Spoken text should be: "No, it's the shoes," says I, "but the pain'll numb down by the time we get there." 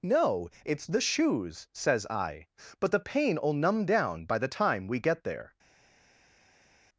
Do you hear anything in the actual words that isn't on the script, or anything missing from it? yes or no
no